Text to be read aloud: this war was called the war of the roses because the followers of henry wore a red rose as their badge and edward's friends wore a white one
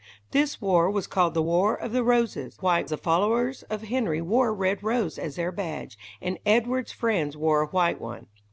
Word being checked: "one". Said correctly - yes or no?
yes